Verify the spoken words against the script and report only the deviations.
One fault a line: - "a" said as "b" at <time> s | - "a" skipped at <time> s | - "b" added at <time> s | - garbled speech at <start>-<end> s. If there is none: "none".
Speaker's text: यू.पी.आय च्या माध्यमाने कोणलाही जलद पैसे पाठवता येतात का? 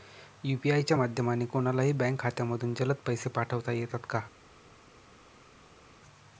- "बँक खात्यामधून" added at 1.9 s